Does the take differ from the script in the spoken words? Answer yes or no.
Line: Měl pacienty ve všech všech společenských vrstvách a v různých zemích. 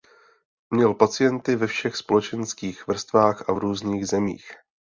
yes